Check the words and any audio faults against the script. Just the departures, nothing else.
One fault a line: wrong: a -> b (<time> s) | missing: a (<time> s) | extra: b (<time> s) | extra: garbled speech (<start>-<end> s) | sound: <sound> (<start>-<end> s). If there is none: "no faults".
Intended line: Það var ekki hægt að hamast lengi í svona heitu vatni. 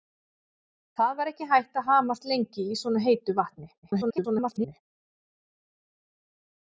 extra: garbled speech (3.8-4.8 s)